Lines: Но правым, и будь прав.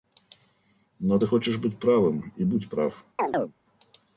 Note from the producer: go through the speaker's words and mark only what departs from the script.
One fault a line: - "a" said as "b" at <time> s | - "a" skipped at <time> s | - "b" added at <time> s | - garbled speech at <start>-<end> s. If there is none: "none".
- "ты хочешь быть" added at 1.1 s